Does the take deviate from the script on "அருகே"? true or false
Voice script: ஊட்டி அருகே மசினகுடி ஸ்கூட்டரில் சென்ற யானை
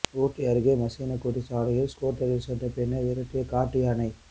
false